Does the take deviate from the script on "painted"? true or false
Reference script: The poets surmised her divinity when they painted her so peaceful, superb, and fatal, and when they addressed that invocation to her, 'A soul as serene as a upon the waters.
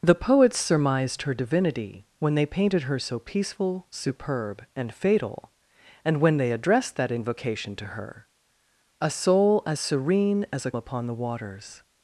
false